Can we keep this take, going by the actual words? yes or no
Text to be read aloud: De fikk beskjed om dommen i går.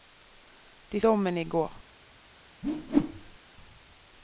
no